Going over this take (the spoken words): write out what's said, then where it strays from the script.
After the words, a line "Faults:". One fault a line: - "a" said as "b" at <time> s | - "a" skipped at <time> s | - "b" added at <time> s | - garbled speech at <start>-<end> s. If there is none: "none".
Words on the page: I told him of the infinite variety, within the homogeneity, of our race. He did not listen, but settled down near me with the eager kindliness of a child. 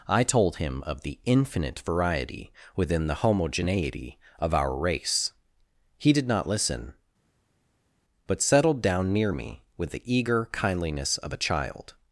I told him of the infinite variety, within the homogeneity, of our race. He did not listen, but settled down near me with the eager kindliness of a child.
Faults:
none